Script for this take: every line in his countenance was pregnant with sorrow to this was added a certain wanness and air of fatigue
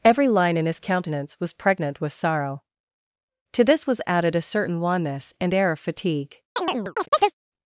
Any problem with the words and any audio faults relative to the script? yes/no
yes